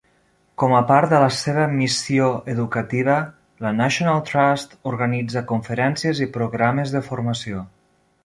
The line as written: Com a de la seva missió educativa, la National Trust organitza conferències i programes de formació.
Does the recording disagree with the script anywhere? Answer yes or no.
yes